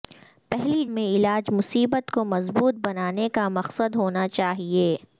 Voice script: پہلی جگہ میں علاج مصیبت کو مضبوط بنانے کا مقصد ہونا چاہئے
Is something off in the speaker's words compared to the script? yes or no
yes